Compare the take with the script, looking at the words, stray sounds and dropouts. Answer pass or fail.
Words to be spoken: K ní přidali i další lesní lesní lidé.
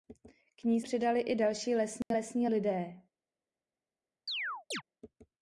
fail